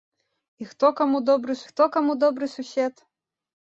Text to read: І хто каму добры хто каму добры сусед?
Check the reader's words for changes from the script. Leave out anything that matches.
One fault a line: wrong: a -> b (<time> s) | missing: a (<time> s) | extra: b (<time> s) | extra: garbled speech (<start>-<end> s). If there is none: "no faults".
no faults